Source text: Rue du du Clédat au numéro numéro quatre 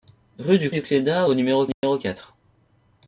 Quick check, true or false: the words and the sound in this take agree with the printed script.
false